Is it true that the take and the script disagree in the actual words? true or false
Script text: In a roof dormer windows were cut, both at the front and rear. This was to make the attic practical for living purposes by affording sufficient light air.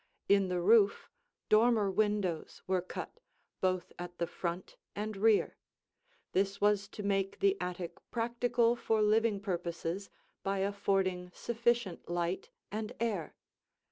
true